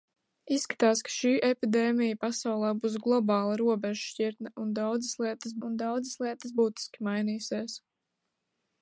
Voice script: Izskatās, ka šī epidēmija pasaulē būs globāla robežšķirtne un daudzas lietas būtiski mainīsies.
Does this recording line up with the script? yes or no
no